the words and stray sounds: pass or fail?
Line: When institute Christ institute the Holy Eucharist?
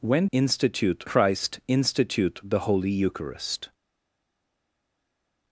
pass